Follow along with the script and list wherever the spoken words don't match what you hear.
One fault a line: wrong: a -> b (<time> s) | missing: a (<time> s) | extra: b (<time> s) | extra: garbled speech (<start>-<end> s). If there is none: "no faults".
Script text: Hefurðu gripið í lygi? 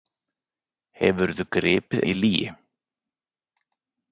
no faults